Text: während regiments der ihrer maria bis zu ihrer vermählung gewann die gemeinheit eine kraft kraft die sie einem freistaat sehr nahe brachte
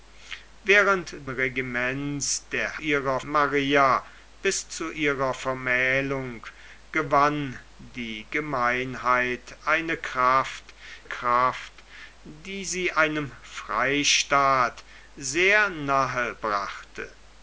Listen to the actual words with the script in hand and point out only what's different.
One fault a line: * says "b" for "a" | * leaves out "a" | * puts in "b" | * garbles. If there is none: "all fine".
all fine